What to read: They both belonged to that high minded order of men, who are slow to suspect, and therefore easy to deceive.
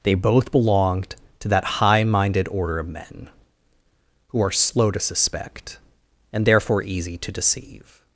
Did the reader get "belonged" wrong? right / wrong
right